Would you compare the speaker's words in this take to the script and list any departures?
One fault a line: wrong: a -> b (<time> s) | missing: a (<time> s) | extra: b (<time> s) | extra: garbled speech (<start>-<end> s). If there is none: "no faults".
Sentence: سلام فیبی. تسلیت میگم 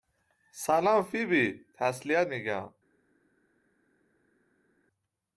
no faults